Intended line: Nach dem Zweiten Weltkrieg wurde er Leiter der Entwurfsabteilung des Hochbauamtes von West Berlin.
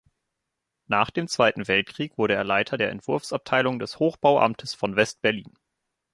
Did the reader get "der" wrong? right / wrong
right